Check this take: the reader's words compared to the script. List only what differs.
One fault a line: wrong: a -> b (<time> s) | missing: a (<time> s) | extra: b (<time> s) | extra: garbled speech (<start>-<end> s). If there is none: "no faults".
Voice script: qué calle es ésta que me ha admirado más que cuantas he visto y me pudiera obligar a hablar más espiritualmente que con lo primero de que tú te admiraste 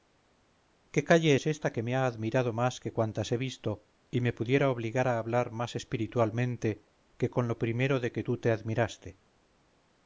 no faults